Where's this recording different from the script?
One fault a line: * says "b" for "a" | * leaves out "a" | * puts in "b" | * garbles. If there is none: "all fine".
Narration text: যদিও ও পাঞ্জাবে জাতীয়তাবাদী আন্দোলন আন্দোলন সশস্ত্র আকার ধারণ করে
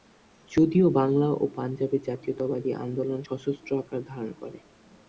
* puts in "বাংলা"
* leaves out "আন্দোলন"